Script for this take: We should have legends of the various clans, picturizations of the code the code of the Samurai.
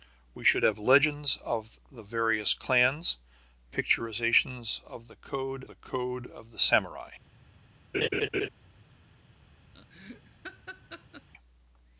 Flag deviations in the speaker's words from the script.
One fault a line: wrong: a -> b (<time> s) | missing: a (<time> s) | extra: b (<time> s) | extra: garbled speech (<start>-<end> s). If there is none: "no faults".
no faults